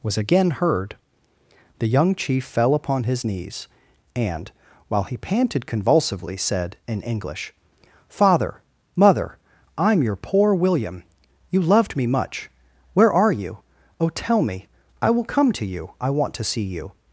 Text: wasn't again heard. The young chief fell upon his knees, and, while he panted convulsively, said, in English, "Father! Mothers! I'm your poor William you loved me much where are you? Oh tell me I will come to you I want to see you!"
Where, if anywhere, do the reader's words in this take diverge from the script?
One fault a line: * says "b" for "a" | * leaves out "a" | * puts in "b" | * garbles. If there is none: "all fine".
* says "was" for "wasn't"
* says "Mother" for "Mothers"